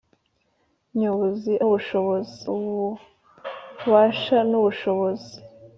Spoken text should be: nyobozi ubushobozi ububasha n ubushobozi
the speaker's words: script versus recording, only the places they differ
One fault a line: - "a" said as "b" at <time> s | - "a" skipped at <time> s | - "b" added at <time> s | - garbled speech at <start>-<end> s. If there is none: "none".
none